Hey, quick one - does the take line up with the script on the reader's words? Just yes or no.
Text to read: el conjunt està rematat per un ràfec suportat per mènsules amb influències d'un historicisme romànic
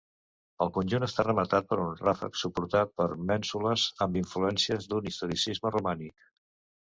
yes